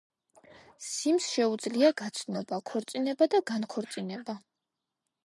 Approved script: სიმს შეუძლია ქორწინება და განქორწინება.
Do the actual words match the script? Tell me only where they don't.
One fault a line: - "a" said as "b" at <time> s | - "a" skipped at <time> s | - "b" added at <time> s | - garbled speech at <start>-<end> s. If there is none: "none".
- "გაცნობა" added at 2.0 s